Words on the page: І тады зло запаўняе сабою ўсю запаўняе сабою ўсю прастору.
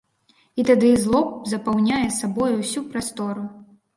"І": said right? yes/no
yes